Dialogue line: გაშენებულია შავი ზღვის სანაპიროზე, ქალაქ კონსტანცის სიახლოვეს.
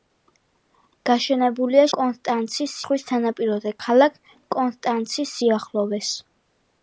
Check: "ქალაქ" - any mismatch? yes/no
no